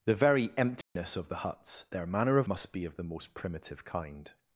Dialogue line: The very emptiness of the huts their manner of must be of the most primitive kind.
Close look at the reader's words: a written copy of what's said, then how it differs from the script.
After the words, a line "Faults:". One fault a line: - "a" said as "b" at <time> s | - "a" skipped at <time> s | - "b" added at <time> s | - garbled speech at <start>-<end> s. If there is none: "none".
The very emptiness of the huts their manner of must be of the most primitive kind.
Faults:
none